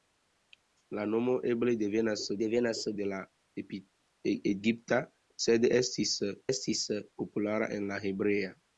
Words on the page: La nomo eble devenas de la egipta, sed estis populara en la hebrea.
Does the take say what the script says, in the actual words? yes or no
no